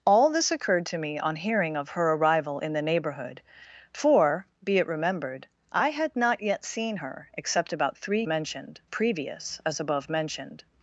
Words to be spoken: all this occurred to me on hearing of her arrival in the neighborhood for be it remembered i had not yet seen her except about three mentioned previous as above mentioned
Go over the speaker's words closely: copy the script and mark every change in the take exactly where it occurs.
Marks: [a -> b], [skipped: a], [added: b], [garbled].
all this occurred to me on hearing of her arrival in the neighborhood for be it remembered i had not yet seen her except about three mentioned previous as above mentioned